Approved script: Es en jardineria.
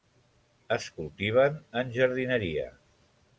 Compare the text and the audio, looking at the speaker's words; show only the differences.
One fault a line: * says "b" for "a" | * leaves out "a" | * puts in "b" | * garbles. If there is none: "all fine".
* puts in "cultiven"